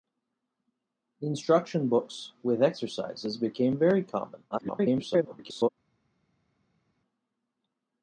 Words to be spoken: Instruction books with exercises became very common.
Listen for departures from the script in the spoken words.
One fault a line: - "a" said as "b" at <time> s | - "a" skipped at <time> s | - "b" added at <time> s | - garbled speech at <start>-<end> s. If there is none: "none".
- garbled speech at 4.5-5.7 s